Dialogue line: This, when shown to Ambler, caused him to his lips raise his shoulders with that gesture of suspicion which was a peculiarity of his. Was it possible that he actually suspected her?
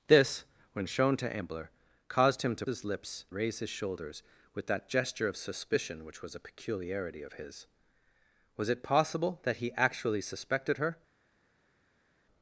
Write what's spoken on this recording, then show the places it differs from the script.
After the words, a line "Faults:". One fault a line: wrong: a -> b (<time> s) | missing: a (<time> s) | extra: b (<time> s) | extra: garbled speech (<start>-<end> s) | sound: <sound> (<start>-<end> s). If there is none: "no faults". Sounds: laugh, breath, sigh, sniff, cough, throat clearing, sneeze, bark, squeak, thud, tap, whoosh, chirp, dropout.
This, when shown to Ambler, caused him to his lips raise his shoulders with that gesture of suspicion which was a peculiarity of his. Was it possible that he actually suspected her?
Faults:
no faults